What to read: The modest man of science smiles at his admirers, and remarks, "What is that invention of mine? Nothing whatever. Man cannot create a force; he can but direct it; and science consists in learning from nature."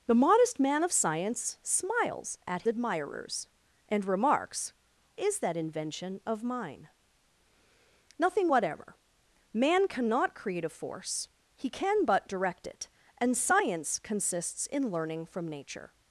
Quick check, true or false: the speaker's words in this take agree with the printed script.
false